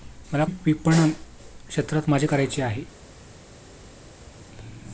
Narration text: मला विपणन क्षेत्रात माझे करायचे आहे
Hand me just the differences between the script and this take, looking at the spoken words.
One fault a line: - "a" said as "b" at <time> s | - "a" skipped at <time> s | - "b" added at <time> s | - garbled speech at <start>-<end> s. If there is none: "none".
none